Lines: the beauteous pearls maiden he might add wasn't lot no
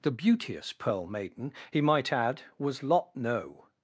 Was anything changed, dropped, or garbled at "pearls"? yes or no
yes